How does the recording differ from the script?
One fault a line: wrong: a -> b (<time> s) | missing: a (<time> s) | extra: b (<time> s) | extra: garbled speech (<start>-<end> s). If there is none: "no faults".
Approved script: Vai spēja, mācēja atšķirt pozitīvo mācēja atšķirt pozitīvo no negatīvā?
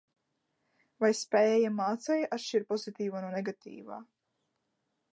missing: mācēja atšķirt pozitīvo (3.2 s)